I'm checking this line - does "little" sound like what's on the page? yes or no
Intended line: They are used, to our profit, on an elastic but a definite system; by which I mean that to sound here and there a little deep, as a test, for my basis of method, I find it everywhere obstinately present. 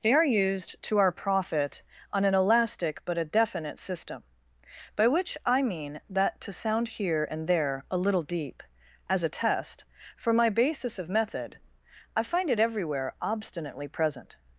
yes